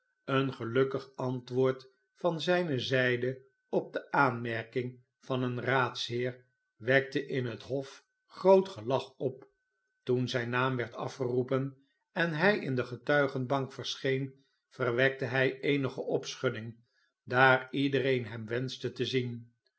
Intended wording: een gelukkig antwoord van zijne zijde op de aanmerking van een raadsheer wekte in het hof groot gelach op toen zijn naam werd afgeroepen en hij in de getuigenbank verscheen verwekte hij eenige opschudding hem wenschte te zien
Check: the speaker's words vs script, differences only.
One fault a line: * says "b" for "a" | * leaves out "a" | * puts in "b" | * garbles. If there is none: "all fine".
* puts in "daar iedereen"